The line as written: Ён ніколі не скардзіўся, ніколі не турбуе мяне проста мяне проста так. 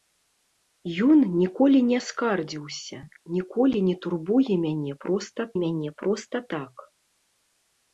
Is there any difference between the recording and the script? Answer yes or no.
no